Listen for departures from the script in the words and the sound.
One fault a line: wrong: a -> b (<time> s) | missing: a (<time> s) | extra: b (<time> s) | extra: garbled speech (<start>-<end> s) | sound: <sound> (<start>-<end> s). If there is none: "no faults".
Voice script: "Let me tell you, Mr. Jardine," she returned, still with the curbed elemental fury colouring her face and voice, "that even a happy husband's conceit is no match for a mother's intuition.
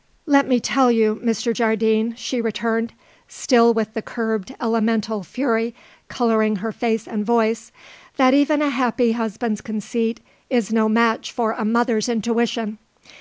no faults